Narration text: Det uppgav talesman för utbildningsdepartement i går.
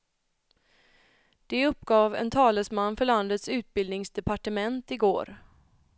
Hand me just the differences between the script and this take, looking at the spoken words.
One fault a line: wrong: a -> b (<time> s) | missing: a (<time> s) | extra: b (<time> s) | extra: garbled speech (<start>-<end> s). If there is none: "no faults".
extra: en (2.1 s)
extra: landets (3.0 s)